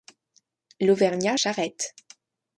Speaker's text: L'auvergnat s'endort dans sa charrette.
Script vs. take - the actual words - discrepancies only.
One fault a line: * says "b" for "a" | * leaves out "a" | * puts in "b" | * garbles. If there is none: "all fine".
* leaves out "s'endort dans sa"